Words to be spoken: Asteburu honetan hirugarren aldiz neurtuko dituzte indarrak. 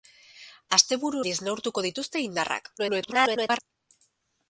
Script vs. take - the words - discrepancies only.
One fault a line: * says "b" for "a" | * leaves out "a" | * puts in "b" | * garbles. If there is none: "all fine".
* leaves out "honetan hirugarren"
* garbles